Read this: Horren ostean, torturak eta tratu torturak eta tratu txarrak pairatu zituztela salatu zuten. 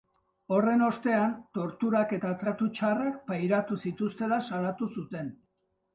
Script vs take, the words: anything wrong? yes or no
yes